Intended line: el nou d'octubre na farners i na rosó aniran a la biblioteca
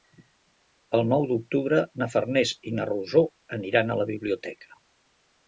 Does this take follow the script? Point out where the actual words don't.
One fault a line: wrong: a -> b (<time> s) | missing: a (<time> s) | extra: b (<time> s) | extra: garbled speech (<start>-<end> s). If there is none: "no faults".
no faults